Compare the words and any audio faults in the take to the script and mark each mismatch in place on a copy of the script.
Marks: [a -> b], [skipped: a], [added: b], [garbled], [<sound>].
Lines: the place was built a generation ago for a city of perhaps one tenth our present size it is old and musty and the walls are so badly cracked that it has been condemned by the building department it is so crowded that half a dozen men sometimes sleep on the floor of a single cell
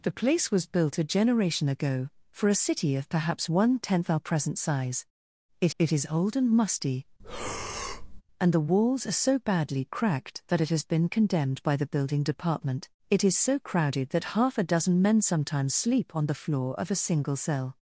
the place was built a generation ago for a city of perhaps one tenth our present size it [added: it] is old and musty [breath] and the walls are so badly cracked that it has been condemned by the building department it is so crowded that half a dozen men sometimes sleep on the floor of a single cell